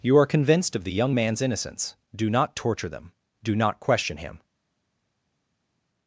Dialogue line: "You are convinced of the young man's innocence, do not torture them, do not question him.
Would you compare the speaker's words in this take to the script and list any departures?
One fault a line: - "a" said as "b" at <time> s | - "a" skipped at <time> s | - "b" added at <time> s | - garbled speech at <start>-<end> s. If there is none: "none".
none